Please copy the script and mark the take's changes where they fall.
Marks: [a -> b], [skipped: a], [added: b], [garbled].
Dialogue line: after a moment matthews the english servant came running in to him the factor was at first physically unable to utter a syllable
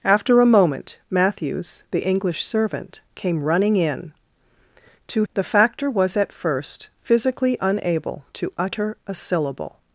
after a moment matthews the english servant came running in to [skipped: him] the factor was at first physically unable to utter a syllable